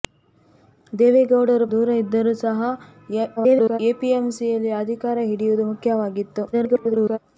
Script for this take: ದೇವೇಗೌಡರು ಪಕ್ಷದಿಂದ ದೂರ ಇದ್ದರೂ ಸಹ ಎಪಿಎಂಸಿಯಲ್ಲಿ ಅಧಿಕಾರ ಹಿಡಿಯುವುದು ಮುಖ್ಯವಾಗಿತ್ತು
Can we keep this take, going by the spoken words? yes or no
no